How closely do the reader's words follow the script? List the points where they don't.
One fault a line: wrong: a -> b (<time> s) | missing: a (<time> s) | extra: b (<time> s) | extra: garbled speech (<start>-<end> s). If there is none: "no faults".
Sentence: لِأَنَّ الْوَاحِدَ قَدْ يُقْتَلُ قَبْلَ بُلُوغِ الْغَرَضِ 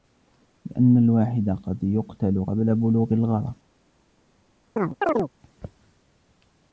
no faults